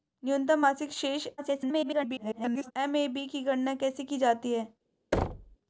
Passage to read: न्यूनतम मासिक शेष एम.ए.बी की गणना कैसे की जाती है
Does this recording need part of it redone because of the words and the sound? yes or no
yes